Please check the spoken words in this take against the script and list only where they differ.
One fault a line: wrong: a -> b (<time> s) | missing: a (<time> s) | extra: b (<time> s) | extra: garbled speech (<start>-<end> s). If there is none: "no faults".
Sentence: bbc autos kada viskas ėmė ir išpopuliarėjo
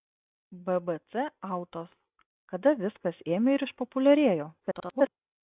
extra: garbled speech (4.6-5.1 s)